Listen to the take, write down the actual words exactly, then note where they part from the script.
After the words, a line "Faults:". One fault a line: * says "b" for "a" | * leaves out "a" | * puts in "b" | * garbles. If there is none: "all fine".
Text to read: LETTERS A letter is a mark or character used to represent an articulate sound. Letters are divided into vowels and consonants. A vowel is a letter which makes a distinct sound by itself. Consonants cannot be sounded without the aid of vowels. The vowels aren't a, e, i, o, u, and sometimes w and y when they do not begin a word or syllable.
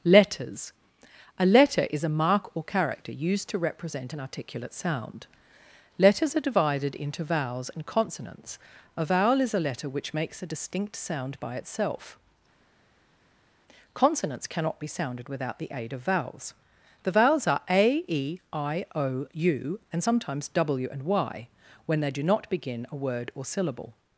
LETTERS A letter is a mark or character used to represent an articulate sound. Letters are divided into vowels and consonants. A vowel is a letter which makes a distinct sound by itself. Consonants cannot be sounded without the aid of vowels. The vowels are a, e, i, o, u, and sometimes w and y when they do not begin a word or syllable.
Faults:
* says "are" for "aren't"